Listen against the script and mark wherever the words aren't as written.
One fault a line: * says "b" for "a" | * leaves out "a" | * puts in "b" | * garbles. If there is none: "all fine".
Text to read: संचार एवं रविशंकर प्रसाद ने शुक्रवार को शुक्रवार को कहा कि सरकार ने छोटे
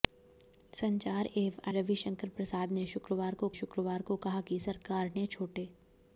all fine